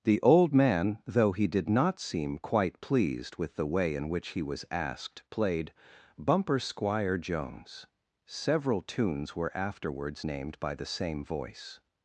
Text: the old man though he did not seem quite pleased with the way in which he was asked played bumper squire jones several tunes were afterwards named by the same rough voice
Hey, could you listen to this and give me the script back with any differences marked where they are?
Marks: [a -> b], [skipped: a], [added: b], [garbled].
the old man though he did not seem quite pleased with the way in which he was asked played bumper squire jones several tunes were afterwards named by the same [skipped: rough] voice